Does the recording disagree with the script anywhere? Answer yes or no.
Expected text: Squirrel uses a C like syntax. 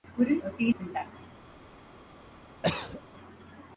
yes